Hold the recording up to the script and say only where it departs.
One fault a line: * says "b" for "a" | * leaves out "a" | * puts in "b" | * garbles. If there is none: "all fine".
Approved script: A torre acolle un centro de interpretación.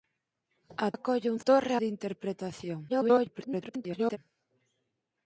* leaves out "torre"
* says "torre" for "centro"
* garbles